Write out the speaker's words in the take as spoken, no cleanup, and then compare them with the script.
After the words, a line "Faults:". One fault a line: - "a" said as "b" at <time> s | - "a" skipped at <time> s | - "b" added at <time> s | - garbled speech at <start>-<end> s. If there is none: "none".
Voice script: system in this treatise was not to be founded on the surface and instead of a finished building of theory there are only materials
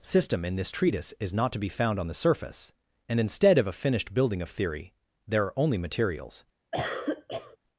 system in this treatise is not to be found on the surface and instead of a finished building of theory there are only materials
Faults:
- "was" said as "is" at 1.2 s
- "founded" said as "found" at 1.7 s